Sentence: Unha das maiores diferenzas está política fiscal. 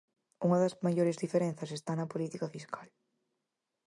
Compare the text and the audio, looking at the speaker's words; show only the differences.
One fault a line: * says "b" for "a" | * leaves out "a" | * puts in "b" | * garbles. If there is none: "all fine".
* puts in "na"